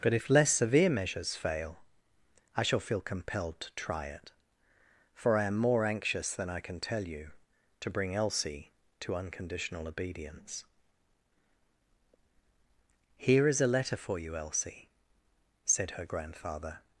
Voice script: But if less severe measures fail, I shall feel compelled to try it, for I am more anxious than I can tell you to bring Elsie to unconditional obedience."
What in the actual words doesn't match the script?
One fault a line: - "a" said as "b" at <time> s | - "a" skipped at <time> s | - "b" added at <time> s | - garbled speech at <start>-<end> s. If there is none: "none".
- "Here is a letter for you Elsie said her grandfather" added at 13.2 s